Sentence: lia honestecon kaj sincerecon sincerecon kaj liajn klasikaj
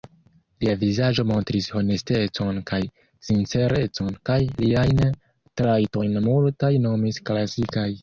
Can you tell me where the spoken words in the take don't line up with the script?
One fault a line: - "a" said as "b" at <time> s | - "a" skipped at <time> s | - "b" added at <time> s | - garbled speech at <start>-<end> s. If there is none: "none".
- "vizaĝo montris" added at 0.8 s
- "sincerecon" skipped at 4.2 s
- "trajtojn multaj nomis" added at 5.6 s